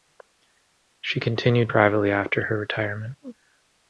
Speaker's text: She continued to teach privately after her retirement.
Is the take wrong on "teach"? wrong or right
wrong